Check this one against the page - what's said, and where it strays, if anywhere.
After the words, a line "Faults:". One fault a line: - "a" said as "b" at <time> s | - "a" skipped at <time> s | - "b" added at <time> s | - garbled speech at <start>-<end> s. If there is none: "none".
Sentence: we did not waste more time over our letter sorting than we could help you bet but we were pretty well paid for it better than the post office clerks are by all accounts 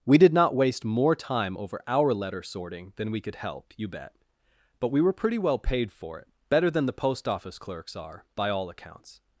we did not waste more time over our letter sorting than we could help you bet but we were pretty well paid for it better than the post office clerks are by all accounts
Faults:
none